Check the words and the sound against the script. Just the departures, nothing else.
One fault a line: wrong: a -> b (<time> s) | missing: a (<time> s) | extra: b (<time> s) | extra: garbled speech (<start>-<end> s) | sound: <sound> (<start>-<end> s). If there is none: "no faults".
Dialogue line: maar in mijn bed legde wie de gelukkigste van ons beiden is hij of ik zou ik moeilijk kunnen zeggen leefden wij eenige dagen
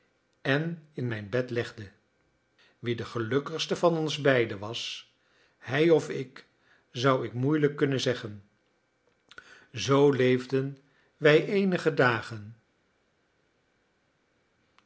wrong: maar -> en (0.4 s)
wrong: is -> was (4.6 s)
extra: zoo (9.7 s)